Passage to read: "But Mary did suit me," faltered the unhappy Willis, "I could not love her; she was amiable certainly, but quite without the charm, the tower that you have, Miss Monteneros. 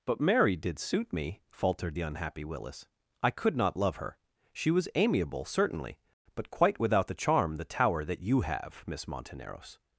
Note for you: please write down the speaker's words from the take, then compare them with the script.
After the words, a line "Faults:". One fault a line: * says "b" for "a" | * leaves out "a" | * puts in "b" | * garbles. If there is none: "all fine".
"But Mary did suit me," faltered the unhappy Willis, "I could not love her; she was amiable certainly, but quite without the charm, the tower that you have, Miss Monteneros.
Faults:
all fine